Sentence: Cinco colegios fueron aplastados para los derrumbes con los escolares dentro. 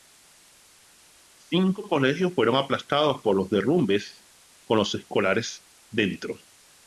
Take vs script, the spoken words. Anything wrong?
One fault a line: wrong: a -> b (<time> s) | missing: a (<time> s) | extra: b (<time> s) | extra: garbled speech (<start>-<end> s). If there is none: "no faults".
wrong: para -> por (3.2 s)